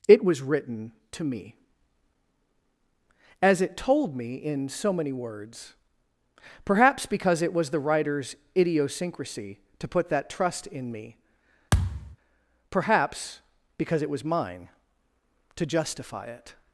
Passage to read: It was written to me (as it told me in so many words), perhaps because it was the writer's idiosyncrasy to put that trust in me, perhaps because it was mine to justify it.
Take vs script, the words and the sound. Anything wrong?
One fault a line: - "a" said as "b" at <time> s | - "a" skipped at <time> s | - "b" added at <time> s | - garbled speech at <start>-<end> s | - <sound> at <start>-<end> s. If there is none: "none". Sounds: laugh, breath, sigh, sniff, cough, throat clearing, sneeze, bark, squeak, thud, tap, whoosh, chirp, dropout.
- thud at 11.7-12.2 s